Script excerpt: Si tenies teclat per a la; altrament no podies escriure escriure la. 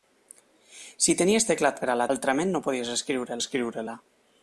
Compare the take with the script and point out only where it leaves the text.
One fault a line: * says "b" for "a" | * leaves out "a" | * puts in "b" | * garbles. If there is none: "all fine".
all fine